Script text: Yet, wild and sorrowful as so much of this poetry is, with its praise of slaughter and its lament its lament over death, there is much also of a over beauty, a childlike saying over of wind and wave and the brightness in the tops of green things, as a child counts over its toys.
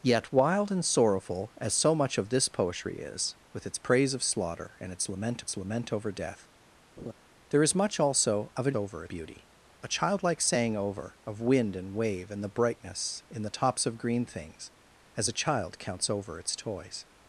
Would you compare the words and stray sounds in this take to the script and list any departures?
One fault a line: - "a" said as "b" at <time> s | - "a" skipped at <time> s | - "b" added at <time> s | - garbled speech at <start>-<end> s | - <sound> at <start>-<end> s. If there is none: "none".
- laugh at 7.0-7.1 s